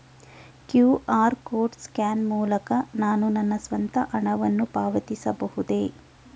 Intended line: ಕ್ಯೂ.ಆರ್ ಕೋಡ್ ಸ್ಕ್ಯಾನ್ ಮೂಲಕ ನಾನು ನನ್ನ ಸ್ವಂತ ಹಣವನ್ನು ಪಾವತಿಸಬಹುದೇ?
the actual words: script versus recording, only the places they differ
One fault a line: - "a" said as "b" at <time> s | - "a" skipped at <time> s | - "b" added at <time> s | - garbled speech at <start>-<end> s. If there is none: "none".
none